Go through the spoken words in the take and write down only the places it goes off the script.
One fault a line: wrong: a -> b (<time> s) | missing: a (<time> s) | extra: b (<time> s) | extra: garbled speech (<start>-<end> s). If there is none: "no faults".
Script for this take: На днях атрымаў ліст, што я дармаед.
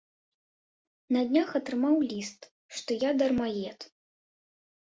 no faults